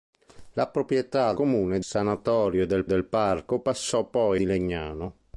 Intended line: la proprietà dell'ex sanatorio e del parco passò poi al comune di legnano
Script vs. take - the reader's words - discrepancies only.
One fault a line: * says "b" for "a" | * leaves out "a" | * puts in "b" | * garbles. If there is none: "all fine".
* says "comune" for "dell'ex"
* puts in "del"
* leaves out "al comune"